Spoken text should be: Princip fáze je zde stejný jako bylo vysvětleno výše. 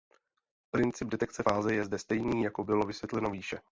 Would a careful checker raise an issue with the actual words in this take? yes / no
yes